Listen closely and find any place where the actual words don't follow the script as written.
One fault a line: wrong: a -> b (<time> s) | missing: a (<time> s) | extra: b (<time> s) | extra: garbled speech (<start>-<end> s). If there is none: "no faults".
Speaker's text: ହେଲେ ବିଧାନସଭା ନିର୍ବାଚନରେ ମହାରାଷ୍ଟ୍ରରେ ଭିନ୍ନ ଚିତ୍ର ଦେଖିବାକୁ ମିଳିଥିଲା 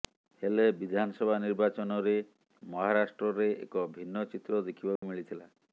extra: ଏକ (3.6 s)